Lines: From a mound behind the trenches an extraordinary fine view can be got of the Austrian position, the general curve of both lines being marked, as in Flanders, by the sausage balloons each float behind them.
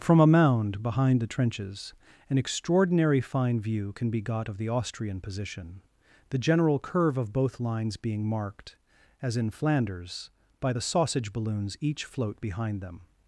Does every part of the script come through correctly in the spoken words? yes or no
yes